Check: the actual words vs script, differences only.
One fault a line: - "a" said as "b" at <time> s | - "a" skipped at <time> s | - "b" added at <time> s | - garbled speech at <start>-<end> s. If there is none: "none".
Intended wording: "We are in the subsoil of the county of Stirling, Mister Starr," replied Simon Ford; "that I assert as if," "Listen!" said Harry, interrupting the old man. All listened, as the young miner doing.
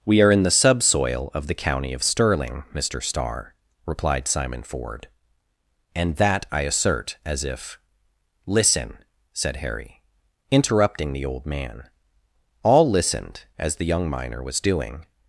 - "and" added at 5.9 s
- "was" added at 14.4 s